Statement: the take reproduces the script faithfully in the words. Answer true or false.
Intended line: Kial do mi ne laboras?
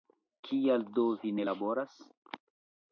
false